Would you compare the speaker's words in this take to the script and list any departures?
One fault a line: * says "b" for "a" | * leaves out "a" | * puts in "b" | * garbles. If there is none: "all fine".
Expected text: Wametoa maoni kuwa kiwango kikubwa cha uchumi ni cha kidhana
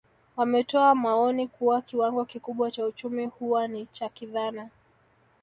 * puts in "huwa"